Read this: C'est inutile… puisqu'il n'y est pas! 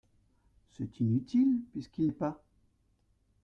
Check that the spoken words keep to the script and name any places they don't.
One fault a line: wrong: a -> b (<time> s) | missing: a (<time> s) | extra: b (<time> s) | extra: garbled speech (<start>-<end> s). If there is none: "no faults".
missing: n'y (2.1 s)